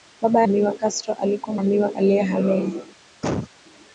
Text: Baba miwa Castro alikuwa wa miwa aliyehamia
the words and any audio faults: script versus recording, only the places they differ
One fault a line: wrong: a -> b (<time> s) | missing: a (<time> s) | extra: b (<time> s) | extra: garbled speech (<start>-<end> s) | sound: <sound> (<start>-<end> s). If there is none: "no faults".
sound: cough (3.2-3.5 s)